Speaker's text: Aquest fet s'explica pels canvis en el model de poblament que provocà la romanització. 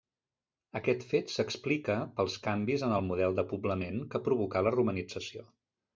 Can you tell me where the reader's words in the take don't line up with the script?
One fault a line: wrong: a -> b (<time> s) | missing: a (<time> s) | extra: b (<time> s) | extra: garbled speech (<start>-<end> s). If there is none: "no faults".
no faults